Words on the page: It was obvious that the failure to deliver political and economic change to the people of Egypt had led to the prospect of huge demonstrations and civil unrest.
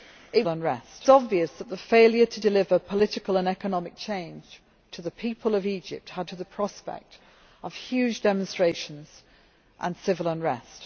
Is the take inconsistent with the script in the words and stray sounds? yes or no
yes